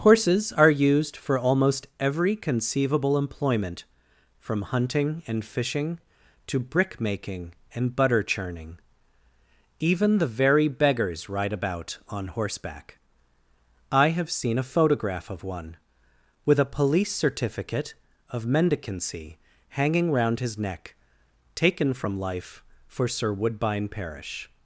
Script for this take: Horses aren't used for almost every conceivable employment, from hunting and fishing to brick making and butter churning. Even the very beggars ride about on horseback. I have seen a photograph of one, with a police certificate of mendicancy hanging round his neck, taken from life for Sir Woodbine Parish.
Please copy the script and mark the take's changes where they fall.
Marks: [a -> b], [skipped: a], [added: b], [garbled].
Horses [aren't -> are] used for almost every conceivable employment, from hunting and fishing to brick making and butter churning. Even the very beggars ride about on horseback. I have seen a photograph of one, with a police certificate of mendicancy hanging round his neck, taken from life for Sir Woodbine Parish.